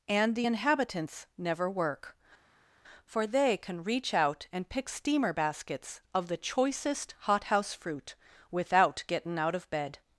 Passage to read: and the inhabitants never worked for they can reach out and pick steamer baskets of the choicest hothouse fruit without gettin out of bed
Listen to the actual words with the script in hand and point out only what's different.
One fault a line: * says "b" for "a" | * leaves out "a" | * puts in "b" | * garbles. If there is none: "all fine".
* says "work" for "worked"